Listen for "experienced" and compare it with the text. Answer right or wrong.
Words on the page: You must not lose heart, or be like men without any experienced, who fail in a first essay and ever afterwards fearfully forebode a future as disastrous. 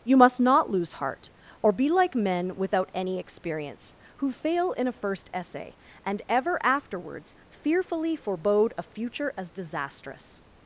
wrong